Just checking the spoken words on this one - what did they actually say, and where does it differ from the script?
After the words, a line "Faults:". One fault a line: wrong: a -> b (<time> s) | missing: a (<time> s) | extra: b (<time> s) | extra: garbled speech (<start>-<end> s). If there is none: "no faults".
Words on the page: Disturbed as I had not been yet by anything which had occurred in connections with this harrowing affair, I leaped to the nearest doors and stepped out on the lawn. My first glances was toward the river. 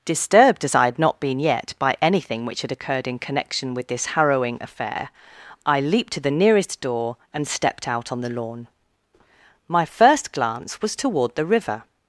Disturbed as I had not been yet by anything which had occurred in connection with this harrowing affair, I leaped to the nearest door and stepped out on the lawn. My first glance was toward the river.
Faults:
wrong: connections -> connection (3.2 s)
wrong: doors -> door (6.8 s)
wrong: glances -> glance (10.3 s)